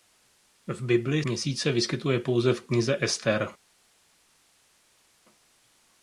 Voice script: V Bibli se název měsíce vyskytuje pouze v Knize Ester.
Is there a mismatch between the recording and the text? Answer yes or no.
yes